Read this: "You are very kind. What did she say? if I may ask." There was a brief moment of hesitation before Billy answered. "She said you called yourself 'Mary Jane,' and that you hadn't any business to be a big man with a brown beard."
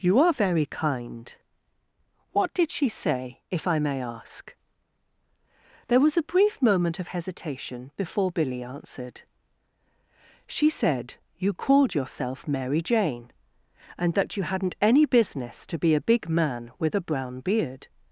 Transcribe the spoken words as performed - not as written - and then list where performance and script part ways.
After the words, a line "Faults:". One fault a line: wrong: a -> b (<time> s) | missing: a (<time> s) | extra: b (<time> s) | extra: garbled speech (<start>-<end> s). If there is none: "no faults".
"You are very kind. What did she say? if I may ask." There was a brief moment of hesitation before Billy answered. "She said you called yourself 'Mary Jane,' and that you hadn't any business to be a big man with a brown beard."
Faults:
no faults